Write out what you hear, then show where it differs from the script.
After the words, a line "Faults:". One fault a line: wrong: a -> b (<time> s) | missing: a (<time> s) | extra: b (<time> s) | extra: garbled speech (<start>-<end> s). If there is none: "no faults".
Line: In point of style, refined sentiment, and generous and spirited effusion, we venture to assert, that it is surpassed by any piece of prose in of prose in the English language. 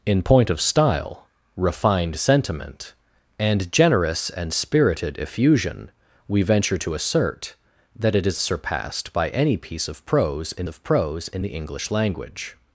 In point of style, refined sentiment, and generous and spirited effusion, we venture to assert, that it is surpassed by any piece of prose in of prose in the English language.
Faults:
no faults